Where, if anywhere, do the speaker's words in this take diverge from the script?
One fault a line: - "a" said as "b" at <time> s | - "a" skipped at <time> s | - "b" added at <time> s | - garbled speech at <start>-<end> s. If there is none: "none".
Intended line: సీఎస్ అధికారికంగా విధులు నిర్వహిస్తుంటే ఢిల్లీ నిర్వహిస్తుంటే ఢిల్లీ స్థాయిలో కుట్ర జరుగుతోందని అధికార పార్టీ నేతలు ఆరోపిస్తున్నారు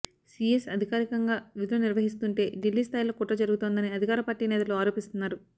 - "నిర్వహిస్తుంటే ఢిల్లీ" skipped at 2.8 s